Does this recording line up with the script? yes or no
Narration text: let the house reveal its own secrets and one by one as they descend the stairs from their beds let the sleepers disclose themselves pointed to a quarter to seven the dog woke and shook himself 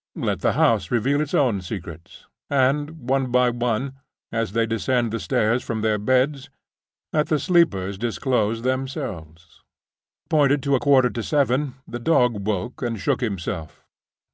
yes